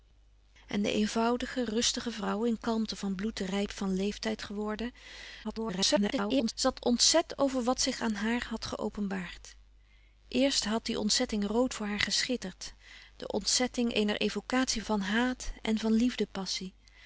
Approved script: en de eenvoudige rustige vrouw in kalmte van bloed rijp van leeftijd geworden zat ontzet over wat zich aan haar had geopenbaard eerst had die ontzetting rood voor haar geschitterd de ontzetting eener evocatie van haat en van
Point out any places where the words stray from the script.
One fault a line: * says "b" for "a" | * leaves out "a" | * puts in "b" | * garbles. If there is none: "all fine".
* garbles